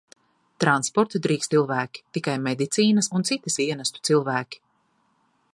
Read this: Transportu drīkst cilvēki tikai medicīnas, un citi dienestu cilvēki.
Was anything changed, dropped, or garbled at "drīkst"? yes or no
no